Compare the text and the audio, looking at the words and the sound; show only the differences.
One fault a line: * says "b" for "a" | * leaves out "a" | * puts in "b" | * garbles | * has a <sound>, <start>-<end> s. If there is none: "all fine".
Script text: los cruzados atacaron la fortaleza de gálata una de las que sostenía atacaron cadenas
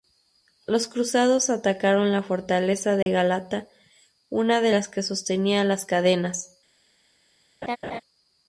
* has a dropout, 3.0-3.1 s
* says "las" for "atacaron"
* has a laugh, 7.6-8.0 s